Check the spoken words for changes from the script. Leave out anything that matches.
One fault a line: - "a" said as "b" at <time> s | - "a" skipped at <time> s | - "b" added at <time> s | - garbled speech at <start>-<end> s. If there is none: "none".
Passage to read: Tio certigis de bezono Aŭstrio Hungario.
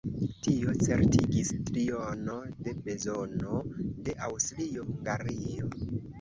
- "triono" added at 1.7 s
- "de" added at 4.1 s